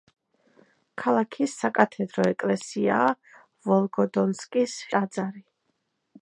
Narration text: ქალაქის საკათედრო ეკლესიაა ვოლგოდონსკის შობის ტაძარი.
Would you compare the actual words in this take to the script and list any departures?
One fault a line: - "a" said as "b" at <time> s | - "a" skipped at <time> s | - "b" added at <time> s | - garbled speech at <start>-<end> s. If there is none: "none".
- "შობის" skipped at 4.8 s